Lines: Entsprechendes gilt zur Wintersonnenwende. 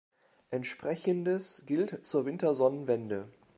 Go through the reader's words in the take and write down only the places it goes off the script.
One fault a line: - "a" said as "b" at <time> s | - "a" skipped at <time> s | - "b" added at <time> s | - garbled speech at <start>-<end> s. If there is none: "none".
none